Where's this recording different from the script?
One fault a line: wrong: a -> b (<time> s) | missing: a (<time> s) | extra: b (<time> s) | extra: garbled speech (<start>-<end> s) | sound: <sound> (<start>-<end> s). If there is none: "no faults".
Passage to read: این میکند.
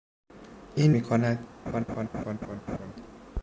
sound: laugh (1.7-2.9 s)